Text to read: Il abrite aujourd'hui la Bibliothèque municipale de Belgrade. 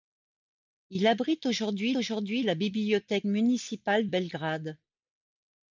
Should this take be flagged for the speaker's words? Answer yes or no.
yes